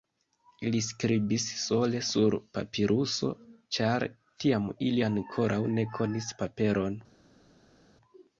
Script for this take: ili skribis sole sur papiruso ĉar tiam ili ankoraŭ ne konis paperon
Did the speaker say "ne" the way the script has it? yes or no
yes